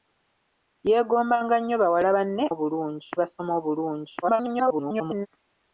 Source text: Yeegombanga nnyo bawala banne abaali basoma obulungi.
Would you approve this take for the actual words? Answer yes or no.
no